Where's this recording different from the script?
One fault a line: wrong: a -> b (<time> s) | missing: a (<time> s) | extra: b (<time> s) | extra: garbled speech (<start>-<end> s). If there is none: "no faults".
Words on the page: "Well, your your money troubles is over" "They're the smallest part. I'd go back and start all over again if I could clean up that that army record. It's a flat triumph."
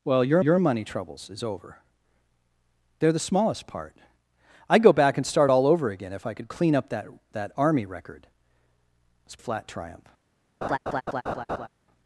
no faults